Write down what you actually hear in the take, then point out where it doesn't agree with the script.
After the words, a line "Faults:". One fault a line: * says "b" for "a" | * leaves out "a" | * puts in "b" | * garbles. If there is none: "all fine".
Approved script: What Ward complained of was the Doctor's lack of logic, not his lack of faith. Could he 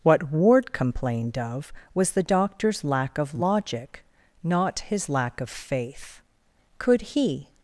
What Ward complained of was the Doctor's lack of logic, not his lack of faith. Could he
Faults:
all fine